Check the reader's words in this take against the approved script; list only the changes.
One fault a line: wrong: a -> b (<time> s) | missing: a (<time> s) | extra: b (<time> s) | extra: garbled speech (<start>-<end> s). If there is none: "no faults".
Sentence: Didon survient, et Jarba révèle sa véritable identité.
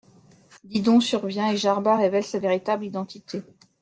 no faults